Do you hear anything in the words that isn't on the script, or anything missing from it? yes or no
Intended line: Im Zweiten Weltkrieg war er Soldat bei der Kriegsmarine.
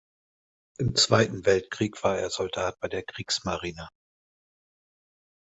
no